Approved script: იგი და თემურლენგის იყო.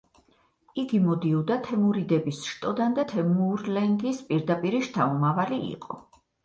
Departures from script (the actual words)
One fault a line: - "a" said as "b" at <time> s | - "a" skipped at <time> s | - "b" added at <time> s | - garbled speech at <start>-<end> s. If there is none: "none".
- "მოდიოდა თემურიდების შტოდან" added at 1.0 s
- "პირდაპირი შთამომავალი" added at 4.3 s